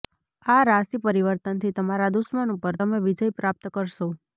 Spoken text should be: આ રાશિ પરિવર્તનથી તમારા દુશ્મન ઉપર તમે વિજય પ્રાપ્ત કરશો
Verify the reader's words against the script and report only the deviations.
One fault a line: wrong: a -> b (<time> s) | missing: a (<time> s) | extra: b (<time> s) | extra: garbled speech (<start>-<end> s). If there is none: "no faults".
no faults